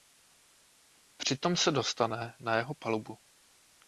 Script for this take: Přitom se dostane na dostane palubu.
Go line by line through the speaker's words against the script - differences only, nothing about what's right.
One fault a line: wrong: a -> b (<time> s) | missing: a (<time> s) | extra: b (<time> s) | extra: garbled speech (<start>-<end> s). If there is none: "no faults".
wrong: dostane -> jeho (2.5 s)